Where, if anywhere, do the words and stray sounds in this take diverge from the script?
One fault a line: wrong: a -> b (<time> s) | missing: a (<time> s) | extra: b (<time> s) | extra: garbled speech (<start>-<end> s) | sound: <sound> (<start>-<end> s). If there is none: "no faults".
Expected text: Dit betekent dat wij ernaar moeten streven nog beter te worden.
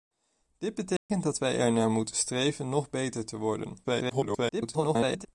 sound: dropout (1.0-1.1 s)
extra: garbled speech (3.8-5.3 s)